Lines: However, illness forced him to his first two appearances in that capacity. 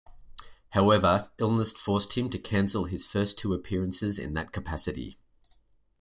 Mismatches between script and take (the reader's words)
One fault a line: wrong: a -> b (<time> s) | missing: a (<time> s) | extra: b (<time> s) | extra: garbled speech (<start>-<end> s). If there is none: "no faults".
extra: cancel (2.4 s)